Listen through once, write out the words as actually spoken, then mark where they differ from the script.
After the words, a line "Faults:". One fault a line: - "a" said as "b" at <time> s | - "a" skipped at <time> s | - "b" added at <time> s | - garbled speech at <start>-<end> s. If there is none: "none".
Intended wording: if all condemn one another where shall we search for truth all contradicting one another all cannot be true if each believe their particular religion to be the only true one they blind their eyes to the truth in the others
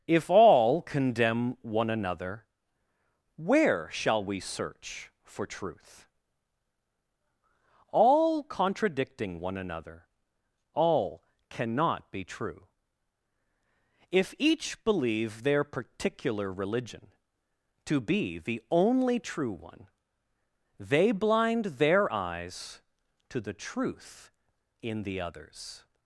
if all condemn one another where shall we search for truth all contradicting one another all cannot be true if each believe their particular religion to be the only true one they blind their eyes to the truth in the others
Faults:
none